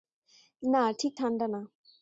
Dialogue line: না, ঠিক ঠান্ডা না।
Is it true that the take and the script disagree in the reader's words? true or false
false